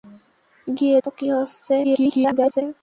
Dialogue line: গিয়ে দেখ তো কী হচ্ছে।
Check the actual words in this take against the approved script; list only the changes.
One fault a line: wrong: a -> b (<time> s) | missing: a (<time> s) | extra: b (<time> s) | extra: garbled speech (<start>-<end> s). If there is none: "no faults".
missing: দেখ (1.0 s)
extra: garbled speech (1.8-2.6 s)